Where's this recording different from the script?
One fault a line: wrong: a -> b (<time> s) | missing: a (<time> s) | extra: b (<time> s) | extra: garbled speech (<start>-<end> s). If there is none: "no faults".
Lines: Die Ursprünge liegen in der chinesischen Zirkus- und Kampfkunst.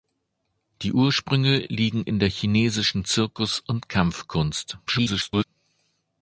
extra: garbled speech (4.9-5.4 s)